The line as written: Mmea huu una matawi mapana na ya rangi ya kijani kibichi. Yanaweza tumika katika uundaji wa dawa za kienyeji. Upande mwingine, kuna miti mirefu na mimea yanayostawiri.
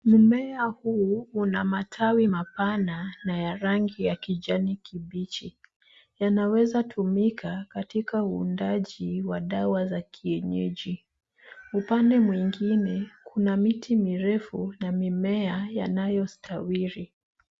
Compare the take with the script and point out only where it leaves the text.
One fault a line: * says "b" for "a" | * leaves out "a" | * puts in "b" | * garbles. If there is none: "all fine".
all fine